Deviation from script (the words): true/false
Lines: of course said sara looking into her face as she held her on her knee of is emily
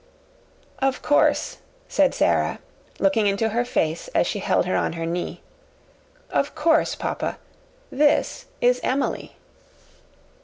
true